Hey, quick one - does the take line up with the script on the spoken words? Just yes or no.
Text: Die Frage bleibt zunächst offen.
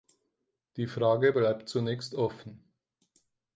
yes